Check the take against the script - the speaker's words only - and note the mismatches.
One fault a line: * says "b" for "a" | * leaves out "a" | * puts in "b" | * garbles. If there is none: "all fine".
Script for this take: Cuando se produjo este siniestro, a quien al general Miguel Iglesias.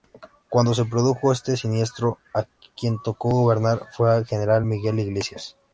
* puts in "tocó gobernar fue"